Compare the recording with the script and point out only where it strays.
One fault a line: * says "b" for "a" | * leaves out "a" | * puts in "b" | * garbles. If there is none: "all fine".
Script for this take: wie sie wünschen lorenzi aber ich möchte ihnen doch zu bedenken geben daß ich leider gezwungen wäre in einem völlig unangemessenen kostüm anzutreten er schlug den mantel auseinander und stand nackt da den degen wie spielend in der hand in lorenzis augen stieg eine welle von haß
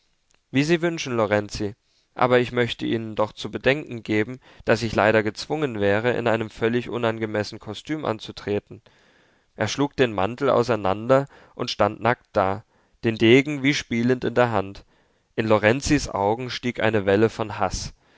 all fine